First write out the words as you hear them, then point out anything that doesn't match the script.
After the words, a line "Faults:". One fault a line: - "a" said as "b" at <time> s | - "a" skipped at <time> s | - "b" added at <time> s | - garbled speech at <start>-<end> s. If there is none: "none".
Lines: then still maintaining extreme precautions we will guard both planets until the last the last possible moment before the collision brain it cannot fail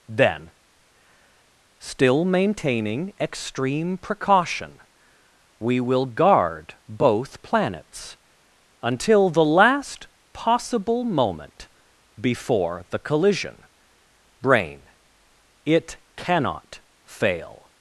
then still maintaining extreme precaution we will guard both planets until the last possible moment before the collision brain it cannot fail
Faults:
- "precautions" said as "precaution" at 4.0 s
- "the last" skipped at 10.1 s